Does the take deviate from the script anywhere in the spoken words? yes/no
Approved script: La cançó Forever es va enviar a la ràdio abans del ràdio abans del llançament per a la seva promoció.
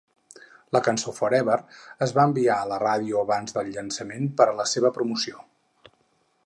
yes